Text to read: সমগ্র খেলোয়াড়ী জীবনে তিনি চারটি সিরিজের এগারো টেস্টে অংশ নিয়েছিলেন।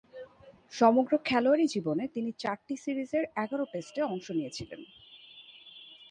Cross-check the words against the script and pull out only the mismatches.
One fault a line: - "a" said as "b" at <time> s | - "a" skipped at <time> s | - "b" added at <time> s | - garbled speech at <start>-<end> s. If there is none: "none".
none